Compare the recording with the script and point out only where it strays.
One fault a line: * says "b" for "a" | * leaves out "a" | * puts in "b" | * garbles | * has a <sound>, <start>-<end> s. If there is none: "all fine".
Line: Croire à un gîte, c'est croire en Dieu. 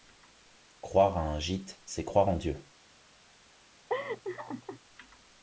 * has a laugh, 3.9-4.8 s